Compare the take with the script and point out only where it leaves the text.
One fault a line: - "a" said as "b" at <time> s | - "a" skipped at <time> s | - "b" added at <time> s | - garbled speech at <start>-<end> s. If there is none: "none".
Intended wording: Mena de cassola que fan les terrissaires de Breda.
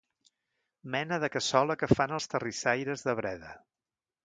- "les" said as "els" at 2.2 s